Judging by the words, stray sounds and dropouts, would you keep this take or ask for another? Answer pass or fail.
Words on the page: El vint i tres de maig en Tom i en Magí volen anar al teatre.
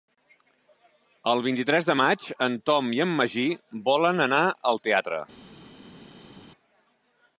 pass